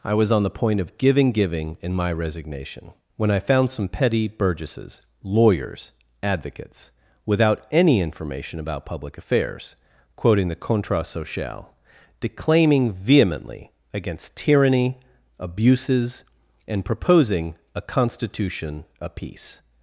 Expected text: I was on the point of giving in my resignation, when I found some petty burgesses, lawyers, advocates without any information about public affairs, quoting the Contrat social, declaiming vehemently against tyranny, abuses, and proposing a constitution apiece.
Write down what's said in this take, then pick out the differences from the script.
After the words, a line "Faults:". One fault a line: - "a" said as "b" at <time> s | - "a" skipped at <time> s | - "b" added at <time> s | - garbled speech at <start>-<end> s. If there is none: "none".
I was on the point of giving giving in my resignation, when I found some petty burgesses, lawyers, advocates without any information about public affairs, quoting the Contrat social, declaiming vehemently against tyranny, abuses, and proposing a constitution apiece.
Faults:
- "giving" added at 1.3 s